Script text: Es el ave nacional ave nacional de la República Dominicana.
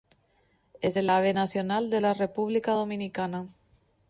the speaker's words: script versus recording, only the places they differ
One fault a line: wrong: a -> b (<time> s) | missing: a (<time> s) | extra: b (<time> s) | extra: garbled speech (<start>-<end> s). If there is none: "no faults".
missing: ave nacional (1.9 s)